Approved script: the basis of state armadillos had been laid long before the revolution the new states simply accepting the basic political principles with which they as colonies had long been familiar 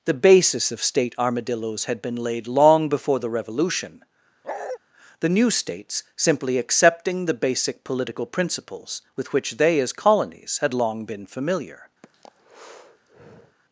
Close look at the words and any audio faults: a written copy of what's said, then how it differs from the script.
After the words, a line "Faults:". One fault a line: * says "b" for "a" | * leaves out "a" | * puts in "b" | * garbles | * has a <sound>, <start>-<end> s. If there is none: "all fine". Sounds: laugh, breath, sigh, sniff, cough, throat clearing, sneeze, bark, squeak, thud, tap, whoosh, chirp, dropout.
the basis of state armadillos had been laid long before the revolution the new states simply accepting the basic political principles with which they as colonies had long been familiar
Faults:
* has a bark, 4.4-4.8 s
* has a breath, 12.0-13.6 s